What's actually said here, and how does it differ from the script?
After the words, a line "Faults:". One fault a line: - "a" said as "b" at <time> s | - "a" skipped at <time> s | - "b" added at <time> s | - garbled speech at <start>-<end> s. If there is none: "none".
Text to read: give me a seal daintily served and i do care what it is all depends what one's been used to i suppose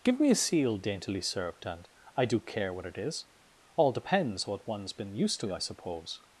give me a seal daintily served and i do care what it is all depends what one's been used to i suppose
Faults:
none